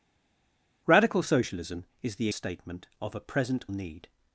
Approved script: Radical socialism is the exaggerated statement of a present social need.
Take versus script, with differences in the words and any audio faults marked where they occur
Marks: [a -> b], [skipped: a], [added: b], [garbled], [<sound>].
Radical socialism is the [skipped: exaggerated] statement of a present [skipped: social] need.